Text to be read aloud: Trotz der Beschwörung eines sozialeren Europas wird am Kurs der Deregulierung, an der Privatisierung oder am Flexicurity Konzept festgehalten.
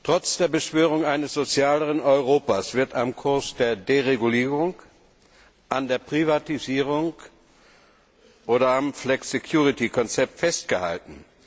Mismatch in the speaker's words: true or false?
false